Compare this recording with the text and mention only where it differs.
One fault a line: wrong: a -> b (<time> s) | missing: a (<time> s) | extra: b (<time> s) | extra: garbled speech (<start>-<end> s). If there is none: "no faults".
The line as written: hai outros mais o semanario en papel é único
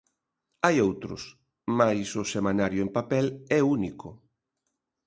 no faults